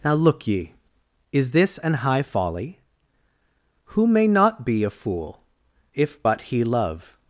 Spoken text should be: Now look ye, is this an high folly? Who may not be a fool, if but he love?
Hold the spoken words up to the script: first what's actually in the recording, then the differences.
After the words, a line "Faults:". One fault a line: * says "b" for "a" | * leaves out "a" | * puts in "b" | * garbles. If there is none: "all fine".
Now look ye, is this an high folly? Who may not be a fool, if but he love?
Faults:
all fine